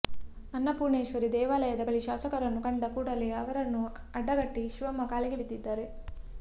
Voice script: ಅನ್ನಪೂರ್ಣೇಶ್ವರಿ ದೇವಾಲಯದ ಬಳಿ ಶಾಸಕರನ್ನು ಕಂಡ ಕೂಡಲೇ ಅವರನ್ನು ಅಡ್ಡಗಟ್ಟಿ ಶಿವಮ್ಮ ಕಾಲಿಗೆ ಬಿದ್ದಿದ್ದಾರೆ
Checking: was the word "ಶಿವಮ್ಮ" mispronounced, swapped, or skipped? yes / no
no